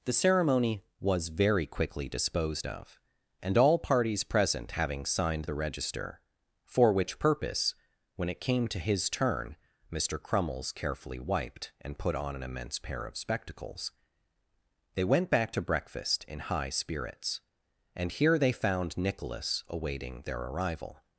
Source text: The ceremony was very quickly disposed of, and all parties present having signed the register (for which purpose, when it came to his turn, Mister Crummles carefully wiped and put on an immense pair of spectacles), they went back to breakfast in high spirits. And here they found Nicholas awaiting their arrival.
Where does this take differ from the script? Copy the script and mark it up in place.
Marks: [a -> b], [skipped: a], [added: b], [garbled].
The ceremony was very quickly disposed of, and all parties present having signed the register (for which purpose, when it came to his turn, Mister Crummles carefully wiped and put on an immense pair of spectacles), they went back to breakfast in high spirits. And here they found Nicholas awaiting their arrival.